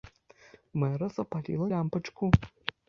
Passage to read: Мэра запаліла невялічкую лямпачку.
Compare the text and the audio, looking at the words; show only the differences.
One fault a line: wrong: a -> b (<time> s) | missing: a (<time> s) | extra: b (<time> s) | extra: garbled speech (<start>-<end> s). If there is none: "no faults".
missing: невялічкую (1.7 s)